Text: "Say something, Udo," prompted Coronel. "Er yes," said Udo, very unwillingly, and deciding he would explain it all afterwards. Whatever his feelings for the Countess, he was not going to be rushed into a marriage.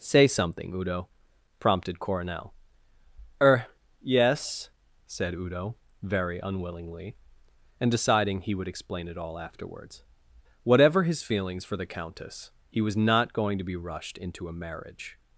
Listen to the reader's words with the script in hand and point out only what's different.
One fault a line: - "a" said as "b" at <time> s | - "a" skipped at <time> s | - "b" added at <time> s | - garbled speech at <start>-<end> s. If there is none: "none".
none